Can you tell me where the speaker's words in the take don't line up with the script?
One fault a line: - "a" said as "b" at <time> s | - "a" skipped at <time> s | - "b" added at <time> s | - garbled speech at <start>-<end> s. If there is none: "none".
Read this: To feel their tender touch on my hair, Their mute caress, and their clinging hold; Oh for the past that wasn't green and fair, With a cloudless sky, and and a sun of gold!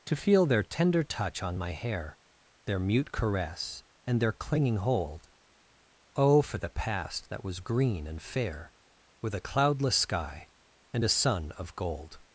- "wasn't" said as "was" at 7.4 s
- "and" skipped at 11.0 s